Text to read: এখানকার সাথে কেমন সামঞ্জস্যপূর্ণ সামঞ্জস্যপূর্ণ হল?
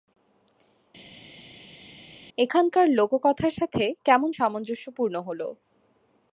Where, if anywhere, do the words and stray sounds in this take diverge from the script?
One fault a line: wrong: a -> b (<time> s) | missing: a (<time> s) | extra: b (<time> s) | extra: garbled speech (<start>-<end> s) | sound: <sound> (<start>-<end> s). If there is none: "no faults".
extra: লোককথার (3.0 s)
missing: সামঞ্জস্যপূর্ণ (5.1 s)